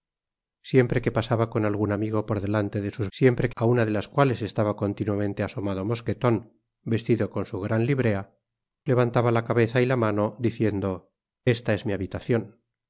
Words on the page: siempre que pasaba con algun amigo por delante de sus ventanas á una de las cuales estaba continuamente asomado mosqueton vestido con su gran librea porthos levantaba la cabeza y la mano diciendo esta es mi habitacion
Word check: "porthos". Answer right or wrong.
wrong